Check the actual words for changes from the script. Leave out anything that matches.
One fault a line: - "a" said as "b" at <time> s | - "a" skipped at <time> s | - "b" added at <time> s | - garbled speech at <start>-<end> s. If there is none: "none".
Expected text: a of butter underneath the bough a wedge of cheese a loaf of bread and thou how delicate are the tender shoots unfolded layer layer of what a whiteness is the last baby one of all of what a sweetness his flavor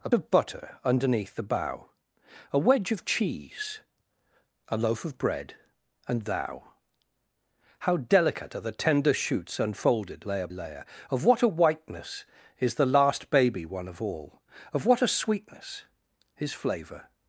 none